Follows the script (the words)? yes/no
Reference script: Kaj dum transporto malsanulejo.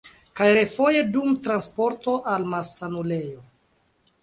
no